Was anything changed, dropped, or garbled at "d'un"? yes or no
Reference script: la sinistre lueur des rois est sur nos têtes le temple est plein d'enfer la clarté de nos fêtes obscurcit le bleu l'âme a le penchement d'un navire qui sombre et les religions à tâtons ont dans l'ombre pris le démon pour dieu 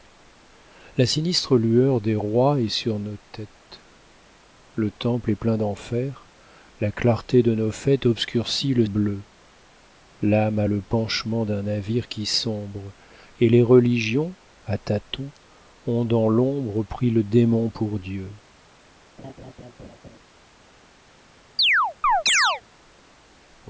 no